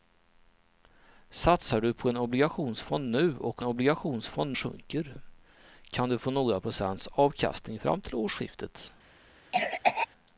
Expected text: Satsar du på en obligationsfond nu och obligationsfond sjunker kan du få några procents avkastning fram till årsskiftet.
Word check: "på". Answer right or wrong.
right